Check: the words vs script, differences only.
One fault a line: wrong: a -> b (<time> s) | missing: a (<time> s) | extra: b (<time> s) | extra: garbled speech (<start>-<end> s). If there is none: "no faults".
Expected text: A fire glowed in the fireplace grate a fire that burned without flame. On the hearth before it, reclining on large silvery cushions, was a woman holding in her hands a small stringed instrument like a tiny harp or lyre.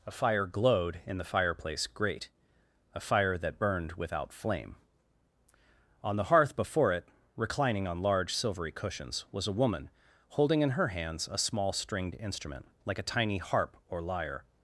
no faults